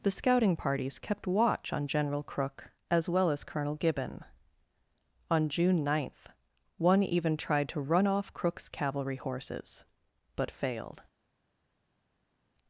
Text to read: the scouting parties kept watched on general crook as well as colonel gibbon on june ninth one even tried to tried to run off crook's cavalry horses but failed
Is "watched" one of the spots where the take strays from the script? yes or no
yes